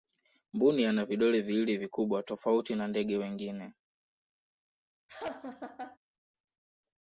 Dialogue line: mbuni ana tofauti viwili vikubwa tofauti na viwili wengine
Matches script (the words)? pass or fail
fail